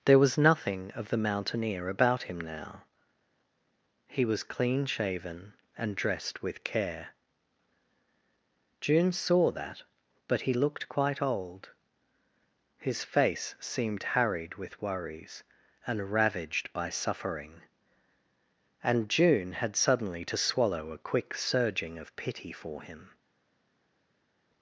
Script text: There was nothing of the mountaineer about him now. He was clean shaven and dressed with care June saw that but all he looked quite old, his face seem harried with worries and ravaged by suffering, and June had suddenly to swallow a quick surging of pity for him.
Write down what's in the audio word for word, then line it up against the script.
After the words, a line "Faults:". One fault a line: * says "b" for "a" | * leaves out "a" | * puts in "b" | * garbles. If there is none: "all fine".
There was nothing of the mountaineer about him now. He was clean shaven and dressed with care June saw that but he looked quite old, his face seemed harried with worries and ravaged by suffering, and June had suddenly to swallow a quick surging of pity for him.
Faults:
* leaves out "all"
* says "seemed" for "seem"